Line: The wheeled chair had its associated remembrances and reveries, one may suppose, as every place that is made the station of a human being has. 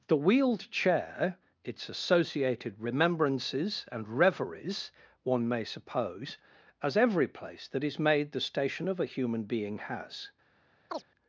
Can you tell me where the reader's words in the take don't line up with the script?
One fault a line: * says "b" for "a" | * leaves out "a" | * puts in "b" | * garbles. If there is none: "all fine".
* leaves out "had"